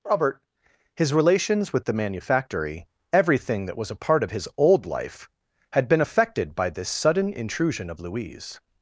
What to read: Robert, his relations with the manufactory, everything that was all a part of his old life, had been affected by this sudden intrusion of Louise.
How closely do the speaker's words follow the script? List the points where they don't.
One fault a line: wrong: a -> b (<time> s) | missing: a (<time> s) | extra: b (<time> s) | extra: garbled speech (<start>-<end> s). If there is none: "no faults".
missing: all (3.9 s)